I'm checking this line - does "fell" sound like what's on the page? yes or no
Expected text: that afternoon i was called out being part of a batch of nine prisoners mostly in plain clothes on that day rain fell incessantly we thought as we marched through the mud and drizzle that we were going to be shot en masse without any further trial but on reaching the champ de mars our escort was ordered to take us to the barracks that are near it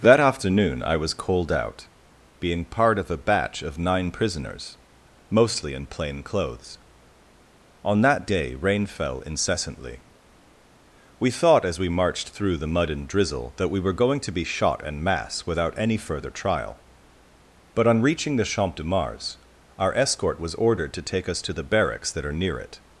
yes